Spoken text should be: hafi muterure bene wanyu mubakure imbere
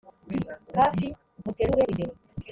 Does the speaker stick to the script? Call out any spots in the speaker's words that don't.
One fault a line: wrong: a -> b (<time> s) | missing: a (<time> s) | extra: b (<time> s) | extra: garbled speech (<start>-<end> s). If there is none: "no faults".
missing: bene wanyu mubakure (1.8 s)